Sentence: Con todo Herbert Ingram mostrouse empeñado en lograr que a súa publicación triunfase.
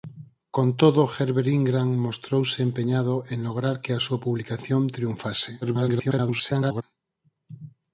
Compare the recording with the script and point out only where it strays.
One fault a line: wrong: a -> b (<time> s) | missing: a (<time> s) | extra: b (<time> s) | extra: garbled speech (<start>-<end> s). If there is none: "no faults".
extra: garbled speech (5.6-6.8 s)